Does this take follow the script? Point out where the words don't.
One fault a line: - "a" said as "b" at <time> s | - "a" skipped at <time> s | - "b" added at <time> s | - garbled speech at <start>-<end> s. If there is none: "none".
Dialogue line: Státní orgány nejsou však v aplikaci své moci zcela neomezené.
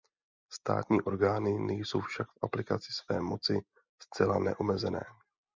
none